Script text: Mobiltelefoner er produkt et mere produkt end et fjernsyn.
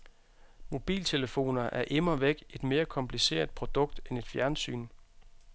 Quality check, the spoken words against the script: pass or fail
fail